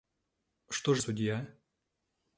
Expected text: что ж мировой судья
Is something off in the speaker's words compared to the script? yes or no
yes